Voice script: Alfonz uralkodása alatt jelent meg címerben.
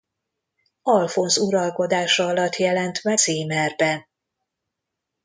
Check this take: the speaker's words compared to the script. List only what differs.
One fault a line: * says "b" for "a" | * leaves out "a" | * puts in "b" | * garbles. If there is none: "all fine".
all fine